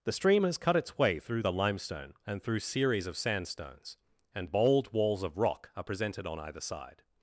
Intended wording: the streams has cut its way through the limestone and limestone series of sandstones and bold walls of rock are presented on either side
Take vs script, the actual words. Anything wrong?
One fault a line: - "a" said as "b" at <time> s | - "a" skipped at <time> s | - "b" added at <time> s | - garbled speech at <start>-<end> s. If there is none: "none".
- "streams" said as "stream" at 0.1 s
- "limestone" said as "through" at 2.4 s